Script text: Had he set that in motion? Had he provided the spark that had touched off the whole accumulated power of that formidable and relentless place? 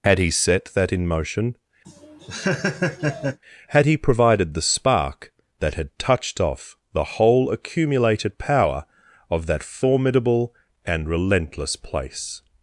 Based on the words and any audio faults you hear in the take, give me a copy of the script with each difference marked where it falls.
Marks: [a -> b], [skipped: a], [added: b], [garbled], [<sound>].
Had he set that in motion? [laugh] Had he provided the spark that had touched off the whole accumulated power of that formidable and relentless place?